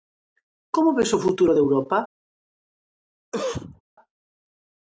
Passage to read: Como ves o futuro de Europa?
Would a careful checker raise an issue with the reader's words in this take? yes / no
no